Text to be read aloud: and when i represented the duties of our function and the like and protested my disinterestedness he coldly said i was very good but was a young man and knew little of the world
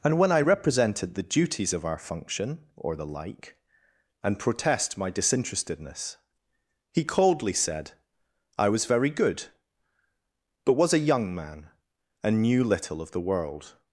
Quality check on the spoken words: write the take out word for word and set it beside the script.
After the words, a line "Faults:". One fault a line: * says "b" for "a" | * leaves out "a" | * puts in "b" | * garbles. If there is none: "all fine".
and when i represented the duties of our function or the like and protest my disinterestedness he coldly said i was very good but was a young man and knew little of the world
Faults:
* says "or" for "and"
* says "protest" for "protested"